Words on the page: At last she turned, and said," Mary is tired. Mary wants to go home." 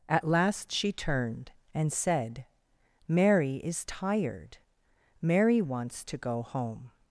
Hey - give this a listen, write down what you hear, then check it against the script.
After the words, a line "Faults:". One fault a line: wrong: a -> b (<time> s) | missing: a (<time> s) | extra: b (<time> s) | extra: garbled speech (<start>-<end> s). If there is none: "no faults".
At last she turned, and said," Mary is tired. Mary wants to go home."
Faults:
no faults